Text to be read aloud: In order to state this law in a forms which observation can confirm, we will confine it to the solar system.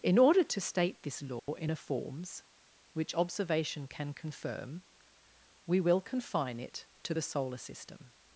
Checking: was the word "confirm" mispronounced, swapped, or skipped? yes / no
no